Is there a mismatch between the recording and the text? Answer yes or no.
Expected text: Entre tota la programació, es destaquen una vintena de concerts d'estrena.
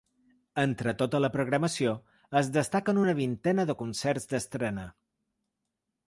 no